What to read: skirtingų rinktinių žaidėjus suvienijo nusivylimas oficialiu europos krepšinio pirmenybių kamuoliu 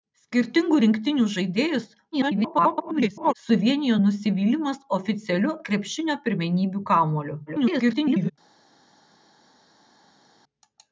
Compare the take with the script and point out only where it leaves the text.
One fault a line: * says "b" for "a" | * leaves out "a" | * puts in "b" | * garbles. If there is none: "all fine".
* garbles
* leaves out "europos"
* garbles